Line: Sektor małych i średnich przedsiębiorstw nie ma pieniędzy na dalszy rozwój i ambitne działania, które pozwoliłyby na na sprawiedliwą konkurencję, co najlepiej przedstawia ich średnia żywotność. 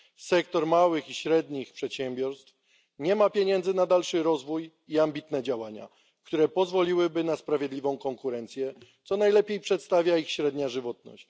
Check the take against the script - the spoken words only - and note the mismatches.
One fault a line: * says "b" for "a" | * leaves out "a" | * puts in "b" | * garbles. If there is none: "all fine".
* leaves out "na"